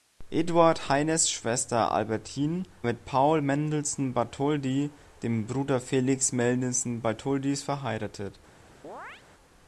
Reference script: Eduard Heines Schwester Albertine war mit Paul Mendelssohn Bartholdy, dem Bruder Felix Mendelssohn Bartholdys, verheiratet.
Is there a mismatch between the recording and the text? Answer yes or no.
yes